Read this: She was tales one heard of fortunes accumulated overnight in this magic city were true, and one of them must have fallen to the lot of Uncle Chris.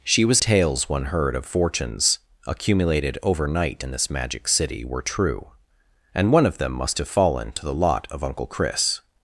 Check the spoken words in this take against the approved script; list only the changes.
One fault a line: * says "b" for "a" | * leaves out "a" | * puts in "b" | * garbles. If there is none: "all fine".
all fine